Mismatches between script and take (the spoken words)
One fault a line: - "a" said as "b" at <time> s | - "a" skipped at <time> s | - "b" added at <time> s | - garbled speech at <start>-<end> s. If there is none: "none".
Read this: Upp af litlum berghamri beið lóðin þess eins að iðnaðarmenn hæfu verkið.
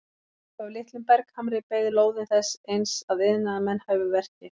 none